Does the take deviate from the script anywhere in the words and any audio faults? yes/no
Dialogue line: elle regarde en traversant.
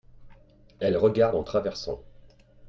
no